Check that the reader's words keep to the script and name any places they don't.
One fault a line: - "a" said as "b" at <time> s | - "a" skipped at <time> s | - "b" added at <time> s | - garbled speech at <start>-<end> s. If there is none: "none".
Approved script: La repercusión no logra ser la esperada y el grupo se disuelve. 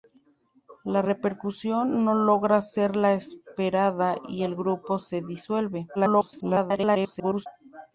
- garbled speech at 5.9-7.5 s